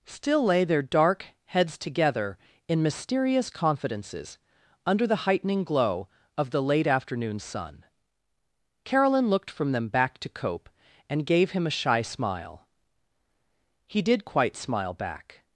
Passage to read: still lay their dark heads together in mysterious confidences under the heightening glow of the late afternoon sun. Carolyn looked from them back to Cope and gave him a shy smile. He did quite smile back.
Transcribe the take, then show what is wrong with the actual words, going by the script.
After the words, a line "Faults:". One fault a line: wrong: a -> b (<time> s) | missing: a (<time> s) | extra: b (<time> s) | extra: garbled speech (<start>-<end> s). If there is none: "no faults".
still lay their dark heads together in mysterious confidences under the heightening glow of the late afternoon sun. Carolyn looked from them back to Cope and gave him a shy smile. He did quite smile back.
Faults:
no faults